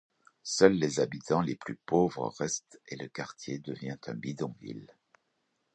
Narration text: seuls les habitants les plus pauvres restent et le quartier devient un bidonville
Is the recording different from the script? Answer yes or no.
no